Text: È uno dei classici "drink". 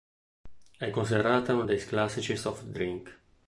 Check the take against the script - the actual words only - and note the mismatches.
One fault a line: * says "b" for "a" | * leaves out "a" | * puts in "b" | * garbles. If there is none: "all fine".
* puts in "considerata"
* puts in "soft"